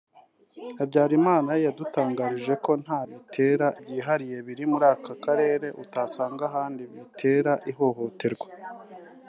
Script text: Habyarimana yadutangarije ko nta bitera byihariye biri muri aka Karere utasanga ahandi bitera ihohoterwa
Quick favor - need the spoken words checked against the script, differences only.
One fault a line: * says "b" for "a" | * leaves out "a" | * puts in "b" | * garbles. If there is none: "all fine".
all fine